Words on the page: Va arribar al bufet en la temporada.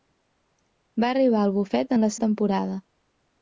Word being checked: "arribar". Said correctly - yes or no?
yes